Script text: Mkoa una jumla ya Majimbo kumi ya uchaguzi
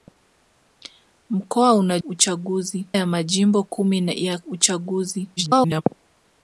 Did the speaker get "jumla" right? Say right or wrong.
wrong